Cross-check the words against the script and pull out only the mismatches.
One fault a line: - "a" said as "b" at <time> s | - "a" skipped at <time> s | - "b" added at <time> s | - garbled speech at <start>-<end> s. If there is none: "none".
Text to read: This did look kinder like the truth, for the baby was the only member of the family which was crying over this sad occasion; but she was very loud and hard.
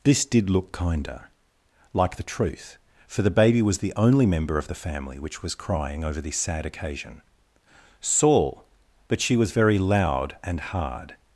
- "saul" added at 8.0 s